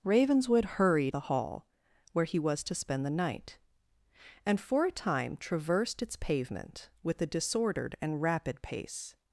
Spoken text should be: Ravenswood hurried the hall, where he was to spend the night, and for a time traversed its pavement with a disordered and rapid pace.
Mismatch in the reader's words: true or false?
false